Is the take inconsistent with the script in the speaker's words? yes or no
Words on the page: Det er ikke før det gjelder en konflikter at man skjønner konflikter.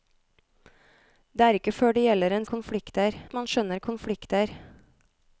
no